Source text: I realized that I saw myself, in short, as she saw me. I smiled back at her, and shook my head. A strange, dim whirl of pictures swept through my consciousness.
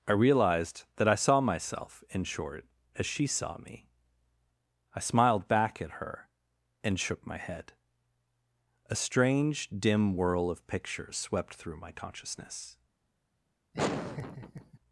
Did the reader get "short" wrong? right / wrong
right